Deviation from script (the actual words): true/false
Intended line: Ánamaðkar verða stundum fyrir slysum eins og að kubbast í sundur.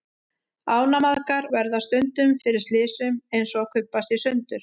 false